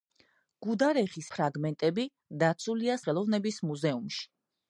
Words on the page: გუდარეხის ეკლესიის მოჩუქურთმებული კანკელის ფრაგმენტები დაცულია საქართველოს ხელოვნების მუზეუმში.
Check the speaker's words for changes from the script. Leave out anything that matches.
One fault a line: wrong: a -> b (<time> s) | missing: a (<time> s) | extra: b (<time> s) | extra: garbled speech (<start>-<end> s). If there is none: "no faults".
missing: ეკლესიის მოჩუქურთმებული კანკელის (1.3 s)
missing: საქართველოს (3.0 s)